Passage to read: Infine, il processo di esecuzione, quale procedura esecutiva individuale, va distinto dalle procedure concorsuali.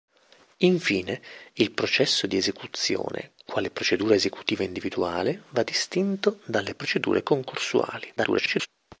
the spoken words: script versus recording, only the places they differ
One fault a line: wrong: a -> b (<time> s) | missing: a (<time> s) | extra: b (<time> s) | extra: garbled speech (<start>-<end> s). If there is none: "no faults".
extra: garbled speech (8.2-8.7 s)